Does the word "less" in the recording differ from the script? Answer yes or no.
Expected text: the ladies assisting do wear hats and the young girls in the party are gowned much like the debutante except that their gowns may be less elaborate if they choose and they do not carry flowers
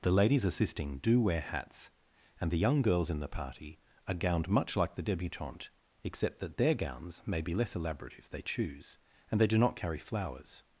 no